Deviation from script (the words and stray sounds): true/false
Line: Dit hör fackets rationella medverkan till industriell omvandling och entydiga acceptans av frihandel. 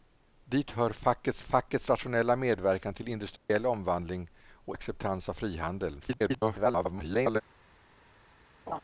true